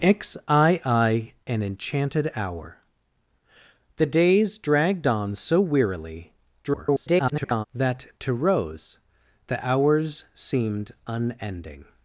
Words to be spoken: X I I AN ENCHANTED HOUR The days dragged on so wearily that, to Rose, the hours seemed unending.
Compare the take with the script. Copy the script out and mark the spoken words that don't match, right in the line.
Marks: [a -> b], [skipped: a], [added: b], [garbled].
X I I AN ENCHANTED HOUR The days dragged on so wearily [garbled] that, to Rose, the hours seemed unending.